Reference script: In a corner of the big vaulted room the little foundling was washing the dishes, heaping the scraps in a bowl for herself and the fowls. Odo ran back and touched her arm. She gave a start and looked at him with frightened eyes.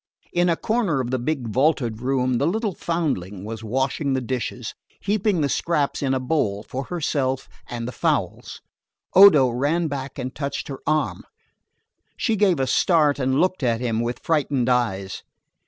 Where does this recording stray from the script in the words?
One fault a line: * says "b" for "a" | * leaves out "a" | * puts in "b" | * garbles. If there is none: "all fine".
all fine